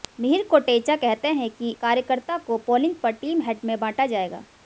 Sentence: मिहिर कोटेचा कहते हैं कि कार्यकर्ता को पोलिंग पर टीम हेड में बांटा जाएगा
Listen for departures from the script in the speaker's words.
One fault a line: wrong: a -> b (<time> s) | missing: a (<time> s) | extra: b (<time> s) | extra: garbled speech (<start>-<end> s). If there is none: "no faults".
no faults